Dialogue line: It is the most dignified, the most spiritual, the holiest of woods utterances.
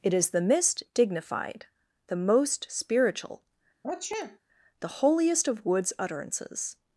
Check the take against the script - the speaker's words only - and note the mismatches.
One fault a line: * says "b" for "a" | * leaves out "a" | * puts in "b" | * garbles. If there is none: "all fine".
* says "mist" for "most"